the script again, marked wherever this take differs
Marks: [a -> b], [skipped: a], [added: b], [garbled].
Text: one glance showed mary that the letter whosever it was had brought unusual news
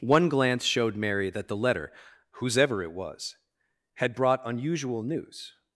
one glance showed mary that the letter whosever it was had brought unusual news